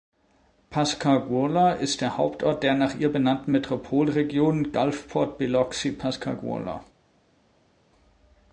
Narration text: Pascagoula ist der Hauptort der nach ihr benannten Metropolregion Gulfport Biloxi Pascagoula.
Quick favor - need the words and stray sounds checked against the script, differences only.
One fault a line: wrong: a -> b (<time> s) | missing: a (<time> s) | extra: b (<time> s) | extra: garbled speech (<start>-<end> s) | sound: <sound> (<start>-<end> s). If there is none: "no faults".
no faults